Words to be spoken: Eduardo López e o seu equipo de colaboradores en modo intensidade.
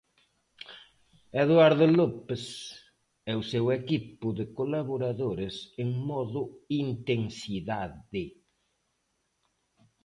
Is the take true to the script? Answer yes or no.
yes